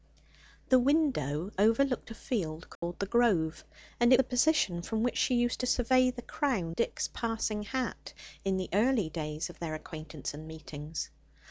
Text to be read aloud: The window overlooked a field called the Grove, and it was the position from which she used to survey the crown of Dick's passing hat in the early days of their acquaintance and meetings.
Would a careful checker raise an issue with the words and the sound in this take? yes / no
yes